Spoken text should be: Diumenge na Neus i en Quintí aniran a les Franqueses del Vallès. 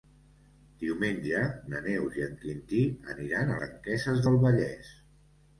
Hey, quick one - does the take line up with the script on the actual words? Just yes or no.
no